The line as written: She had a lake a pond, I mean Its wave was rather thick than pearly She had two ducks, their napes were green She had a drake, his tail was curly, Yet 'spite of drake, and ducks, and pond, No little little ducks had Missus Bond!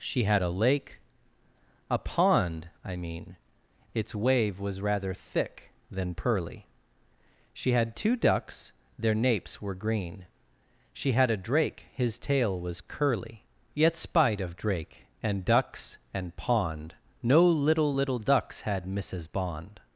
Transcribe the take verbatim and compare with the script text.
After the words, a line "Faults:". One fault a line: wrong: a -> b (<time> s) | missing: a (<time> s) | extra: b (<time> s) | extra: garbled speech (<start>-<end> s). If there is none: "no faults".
She had a lake a pond, I mean Its wave was rather thick than pearly She had two ducks, their napes were green She had a drake, his tail was curly, Yet 'spite of drake, and ducks, and pond, No little little ducks had Missus Bond!
Faults:
no faults